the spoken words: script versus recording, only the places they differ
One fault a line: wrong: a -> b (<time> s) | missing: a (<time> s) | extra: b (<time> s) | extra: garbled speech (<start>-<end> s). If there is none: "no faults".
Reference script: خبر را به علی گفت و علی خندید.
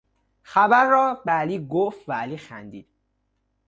no faults